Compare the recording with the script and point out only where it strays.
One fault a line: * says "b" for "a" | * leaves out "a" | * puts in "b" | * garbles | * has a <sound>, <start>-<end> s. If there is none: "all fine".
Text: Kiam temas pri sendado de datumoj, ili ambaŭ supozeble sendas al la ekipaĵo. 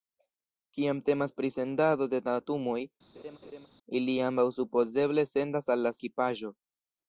* has a laugh, 3.1-3.7 s